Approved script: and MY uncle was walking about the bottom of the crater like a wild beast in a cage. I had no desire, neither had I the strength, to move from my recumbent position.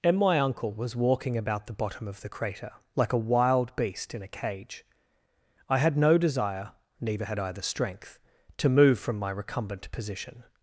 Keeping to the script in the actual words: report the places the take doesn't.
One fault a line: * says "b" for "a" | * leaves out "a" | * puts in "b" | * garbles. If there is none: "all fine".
all fine